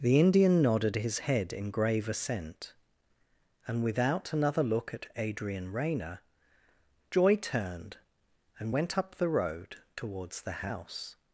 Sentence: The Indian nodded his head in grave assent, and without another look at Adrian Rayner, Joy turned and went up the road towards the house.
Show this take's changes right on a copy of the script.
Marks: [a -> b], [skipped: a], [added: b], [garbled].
The Indian nodded his head in grave assent, and without another look at Adrian Rayner, Joy turned and went up the road towards the house.